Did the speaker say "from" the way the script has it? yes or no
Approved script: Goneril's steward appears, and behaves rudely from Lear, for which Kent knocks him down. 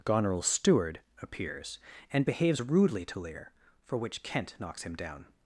no